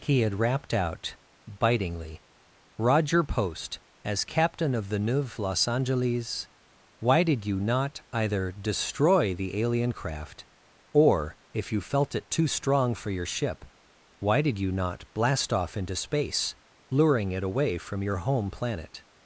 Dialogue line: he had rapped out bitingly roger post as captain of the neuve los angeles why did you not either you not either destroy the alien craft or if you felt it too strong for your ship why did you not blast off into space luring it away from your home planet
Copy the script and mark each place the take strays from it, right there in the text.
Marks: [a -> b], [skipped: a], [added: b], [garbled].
he had rapped out bitingly roger post as captain of the neuve los angeles why did you not either [skipped: you not either] destroy the alien craft or if you felt it too strong for your ship why did you not blast off into space luring it away from your home planet